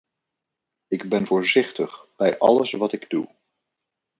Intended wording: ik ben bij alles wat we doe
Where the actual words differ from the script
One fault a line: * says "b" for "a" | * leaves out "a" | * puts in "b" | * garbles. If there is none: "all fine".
* puts in "voorzichtig"
* says "ik" for "we"